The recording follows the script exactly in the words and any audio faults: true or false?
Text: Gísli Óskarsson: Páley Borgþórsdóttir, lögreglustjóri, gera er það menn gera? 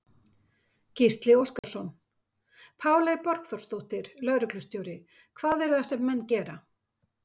false